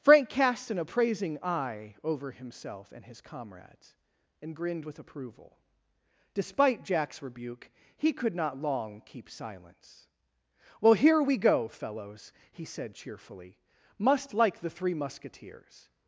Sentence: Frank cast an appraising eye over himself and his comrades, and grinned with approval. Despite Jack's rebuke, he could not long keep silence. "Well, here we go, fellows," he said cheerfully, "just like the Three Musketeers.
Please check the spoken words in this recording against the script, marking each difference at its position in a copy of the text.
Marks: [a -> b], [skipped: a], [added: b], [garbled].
Frank cast an appraising eye over himself and his comrades, and grinned with approval. Despite Jack's rebuke, he could not long keep silence. "Well, here we go, fellows," he said cheerfully, ["just -> must] like the Three Musketeers.